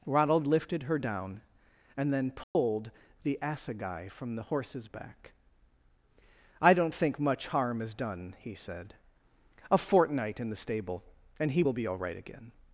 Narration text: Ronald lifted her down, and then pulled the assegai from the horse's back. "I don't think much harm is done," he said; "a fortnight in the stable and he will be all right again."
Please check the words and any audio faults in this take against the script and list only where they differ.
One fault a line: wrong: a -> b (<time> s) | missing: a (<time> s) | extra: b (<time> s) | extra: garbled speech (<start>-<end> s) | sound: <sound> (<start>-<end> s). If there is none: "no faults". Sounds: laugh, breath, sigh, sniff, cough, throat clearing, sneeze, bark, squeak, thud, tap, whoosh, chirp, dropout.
sound: dropout (2.4-2.6 s)